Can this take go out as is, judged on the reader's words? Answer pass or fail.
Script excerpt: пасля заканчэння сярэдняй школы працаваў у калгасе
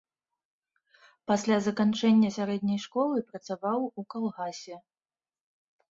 pass